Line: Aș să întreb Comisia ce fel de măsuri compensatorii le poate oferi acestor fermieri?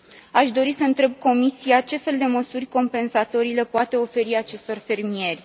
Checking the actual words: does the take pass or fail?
fail